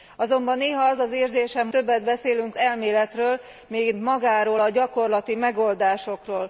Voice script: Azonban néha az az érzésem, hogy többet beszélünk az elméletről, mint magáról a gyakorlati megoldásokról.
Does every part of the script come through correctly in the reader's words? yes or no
no